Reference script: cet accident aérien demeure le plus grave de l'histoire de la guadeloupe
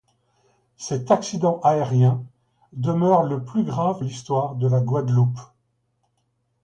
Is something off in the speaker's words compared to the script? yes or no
yes